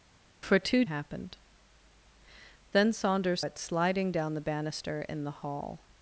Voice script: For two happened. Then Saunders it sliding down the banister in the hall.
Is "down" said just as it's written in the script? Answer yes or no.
yes